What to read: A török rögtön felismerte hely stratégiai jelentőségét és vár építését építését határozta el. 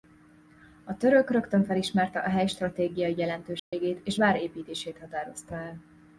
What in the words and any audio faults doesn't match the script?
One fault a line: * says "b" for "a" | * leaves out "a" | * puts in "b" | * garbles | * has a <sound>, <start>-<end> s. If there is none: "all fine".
* puts in "a"
* has a dropout, 3.6-3.7 s
* leaves out "építését"